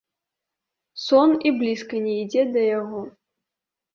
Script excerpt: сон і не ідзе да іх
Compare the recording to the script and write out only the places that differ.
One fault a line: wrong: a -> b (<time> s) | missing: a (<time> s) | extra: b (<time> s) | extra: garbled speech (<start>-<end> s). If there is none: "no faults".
extra: блізка (1.6 s)
wrong: іх -> яго (2.8 s)